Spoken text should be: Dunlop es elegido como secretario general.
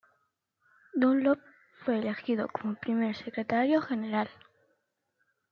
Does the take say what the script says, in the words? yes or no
no